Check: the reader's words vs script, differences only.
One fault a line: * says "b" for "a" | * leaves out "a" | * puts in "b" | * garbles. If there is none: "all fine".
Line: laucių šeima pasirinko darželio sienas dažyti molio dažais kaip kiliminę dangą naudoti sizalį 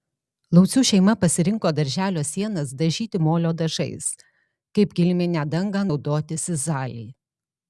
all fine